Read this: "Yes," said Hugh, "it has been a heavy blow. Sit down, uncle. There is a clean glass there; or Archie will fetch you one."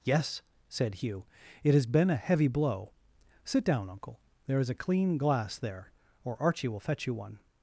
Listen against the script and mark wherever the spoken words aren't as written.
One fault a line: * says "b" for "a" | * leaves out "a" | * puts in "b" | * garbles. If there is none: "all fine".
all fine